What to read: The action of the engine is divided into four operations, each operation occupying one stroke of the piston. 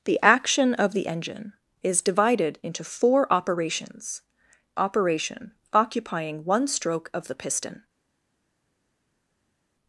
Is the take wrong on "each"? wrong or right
wrong